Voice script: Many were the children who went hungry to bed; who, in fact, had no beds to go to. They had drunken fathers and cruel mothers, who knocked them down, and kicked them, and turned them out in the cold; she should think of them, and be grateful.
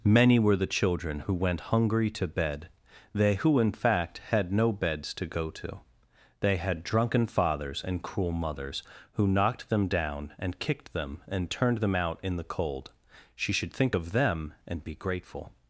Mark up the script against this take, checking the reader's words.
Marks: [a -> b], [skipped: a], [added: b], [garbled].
Many were the children who went hungry to bed; [added: they] who, in fact, had no beds to go to. They had drunken fathers and cruel mothers, who knocked them down, and kicked them, and turned them out in the cold; she should think of them, and be grateful.